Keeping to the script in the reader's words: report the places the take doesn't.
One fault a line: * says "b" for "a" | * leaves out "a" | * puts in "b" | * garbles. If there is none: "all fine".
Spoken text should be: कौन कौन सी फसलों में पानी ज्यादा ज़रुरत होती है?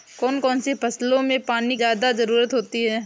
all fine